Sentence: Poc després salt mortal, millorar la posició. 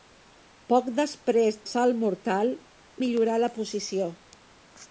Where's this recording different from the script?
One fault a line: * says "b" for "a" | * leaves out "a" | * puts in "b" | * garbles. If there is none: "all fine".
all fine